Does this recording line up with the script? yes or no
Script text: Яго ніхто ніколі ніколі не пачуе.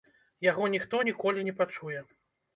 no